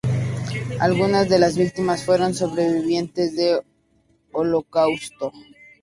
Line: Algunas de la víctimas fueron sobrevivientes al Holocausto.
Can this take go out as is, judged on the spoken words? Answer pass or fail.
fail